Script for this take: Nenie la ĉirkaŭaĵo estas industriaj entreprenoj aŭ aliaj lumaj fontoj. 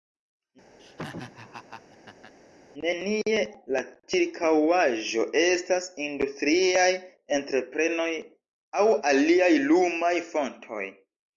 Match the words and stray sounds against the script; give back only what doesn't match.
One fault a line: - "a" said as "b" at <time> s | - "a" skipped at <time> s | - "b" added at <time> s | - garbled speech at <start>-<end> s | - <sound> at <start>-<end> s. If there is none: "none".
- laugh at 0.8-2.3 s